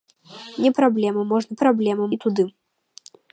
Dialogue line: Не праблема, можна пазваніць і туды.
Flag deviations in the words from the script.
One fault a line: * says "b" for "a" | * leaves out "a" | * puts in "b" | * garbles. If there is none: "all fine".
* says "праблема" for "пазваніць"